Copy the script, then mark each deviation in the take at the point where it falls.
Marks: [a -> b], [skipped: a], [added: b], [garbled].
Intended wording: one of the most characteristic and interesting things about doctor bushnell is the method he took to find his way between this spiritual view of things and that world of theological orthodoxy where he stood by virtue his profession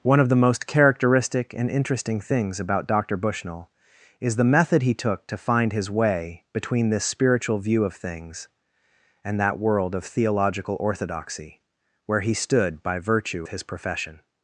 one of the most characteristic and interesting things about doctor bushnell is the method he took to find his way between this spiritual view of things and that world of theological orthodoxy where he stood by virtue his profession